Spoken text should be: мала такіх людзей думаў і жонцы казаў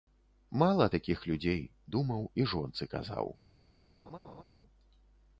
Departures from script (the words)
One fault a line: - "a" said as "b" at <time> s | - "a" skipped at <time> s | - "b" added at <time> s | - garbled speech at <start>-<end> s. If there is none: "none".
none